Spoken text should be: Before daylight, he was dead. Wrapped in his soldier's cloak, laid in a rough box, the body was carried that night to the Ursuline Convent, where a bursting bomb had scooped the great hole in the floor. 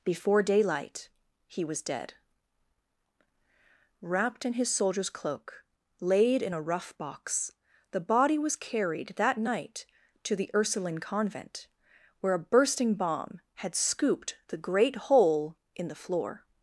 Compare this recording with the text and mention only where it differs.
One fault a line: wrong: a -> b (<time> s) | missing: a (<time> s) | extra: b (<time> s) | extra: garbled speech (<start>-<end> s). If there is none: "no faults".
no faults